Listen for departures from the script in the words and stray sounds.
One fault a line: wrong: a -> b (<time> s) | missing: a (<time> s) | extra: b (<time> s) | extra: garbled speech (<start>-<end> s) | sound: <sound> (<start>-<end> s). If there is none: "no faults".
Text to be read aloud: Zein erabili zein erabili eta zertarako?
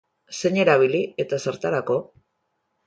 missing: zein erabili (1.0 s)